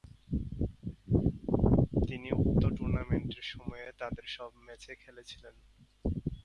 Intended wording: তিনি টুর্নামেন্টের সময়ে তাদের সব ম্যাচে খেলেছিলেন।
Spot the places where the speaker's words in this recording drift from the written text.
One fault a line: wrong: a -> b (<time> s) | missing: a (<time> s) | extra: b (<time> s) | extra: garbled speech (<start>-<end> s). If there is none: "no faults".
extra: উক্ত (2.4 s)